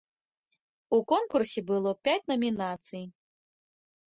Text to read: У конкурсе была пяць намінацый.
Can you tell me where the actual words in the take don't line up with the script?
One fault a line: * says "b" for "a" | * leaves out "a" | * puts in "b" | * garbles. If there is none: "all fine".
* says "было" for "была"